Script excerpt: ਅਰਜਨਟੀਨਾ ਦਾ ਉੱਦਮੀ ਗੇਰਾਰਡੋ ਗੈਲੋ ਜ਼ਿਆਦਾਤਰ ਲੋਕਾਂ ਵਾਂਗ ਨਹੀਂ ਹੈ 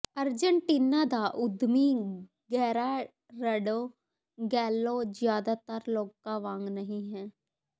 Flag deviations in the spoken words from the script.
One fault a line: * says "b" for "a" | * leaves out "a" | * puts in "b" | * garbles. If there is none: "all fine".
all fine